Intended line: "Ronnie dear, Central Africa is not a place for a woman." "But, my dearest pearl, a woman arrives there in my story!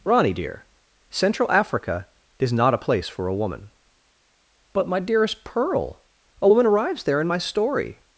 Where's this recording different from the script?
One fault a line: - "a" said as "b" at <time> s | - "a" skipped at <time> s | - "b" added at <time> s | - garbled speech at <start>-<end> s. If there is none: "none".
none